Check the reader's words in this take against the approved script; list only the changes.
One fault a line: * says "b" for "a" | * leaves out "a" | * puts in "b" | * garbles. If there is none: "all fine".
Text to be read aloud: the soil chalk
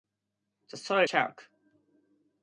all fine